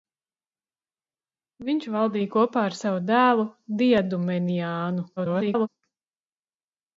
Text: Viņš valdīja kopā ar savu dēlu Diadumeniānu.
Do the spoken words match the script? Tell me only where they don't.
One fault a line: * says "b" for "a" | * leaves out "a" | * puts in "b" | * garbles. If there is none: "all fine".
* garbles